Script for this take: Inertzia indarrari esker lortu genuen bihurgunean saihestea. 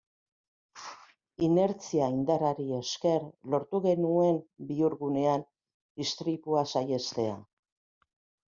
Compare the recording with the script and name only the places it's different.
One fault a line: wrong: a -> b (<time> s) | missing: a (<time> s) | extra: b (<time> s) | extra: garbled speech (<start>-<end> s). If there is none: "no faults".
extra: istripua (6.1 s)